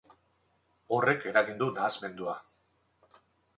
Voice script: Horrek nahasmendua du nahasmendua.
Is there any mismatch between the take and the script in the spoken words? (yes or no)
yes